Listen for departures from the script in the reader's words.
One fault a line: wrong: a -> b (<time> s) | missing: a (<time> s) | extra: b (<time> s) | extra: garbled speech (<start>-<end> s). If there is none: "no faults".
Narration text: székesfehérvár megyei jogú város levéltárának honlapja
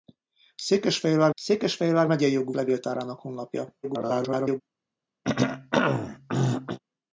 extra: székesfehérvár (1.3 s)
missing: város (2.5 s)
extra: garbled speech (3.8-4.6 s)